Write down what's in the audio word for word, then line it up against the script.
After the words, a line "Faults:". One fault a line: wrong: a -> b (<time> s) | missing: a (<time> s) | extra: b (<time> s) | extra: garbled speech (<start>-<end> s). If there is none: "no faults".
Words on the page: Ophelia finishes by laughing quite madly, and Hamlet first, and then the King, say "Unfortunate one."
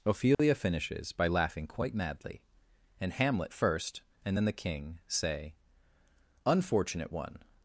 Ophelia finishes by laughing quite madly, and Hamlet first, and then the King, say "Unfortunate one."
Faults:
no faults